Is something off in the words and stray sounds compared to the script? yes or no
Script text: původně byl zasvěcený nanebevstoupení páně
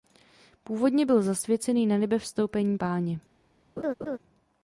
yes